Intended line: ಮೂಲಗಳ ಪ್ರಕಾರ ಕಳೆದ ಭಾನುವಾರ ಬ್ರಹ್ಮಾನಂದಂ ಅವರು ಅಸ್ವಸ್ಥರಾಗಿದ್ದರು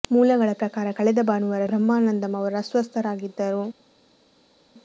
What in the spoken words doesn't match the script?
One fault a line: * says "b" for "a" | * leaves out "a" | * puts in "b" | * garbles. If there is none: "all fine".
all fine